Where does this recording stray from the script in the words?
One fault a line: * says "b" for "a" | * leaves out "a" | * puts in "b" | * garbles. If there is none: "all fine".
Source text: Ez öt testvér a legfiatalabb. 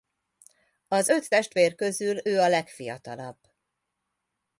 * says "Az" for "Ez"
* puts in "közül ő"